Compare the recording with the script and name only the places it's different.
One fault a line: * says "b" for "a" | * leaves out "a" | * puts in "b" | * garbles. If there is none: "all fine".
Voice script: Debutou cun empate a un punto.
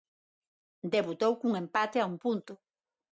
all fine